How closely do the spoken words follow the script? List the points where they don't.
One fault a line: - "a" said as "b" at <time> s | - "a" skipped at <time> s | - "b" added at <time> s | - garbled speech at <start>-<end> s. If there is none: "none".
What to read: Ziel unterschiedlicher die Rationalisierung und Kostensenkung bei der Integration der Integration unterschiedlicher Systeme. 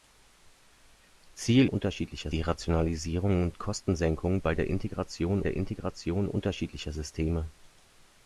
none